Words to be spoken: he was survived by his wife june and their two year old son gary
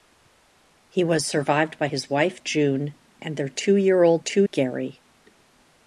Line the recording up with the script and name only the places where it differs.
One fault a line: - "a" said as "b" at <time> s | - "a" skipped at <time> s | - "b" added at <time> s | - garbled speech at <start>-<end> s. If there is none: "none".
- "son" said as "two" at 4.2 s